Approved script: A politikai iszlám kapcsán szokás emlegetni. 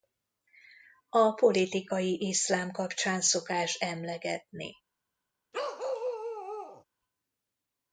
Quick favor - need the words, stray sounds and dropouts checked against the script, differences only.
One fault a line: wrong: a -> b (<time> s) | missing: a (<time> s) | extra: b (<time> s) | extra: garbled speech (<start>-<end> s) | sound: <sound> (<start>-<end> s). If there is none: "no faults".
sound: bark (5.5-6.8 s)